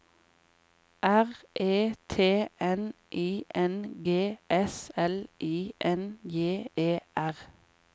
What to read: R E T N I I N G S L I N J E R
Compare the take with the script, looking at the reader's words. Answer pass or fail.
fail